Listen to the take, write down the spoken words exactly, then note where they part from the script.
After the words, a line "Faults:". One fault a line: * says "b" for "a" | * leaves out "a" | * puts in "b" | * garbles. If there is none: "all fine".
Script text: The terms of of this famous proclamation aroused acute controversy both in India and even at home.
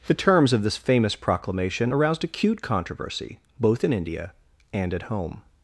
The terms of this famous proclamation aroused acute controversy both in India and at home.
Faults:
* leaves out "of"
* leaves out "even"